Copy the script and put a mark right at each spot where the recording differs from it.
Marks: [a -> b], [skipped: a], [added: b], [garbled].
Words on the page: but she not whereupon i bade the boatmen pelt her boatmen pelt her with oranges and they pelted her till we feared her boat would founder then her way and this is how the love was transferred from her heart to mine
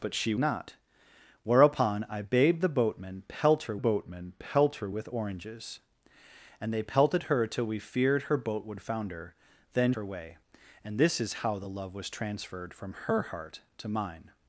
but she not whereupon i bade the boatmen pelt her boatmen pelt her with oranges and they pelted her till we feared her boat would founder then her way and this is how the love was transferred from her heart to mine